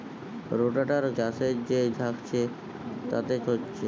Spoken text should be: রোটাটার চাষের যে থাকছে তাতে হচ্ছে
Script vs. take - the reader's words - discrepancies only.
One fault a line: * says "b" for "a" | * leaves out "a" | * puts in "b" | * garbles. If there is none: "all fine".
all fine